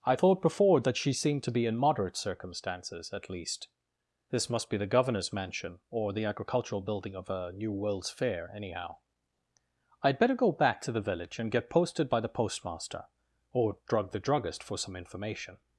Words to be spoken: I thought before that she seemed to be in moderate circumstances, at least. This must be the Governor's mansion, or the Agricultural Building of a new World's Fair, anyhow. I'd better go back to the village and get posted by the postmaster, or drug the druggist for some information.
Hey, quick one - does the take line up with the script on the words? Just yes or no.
yes